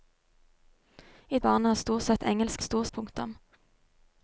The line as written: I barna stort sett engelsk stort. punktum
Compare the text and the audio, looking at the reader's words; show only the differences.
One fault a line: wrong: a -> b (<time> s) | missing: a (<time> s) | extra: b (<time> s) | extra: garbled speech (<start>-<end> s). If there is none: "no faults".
no faults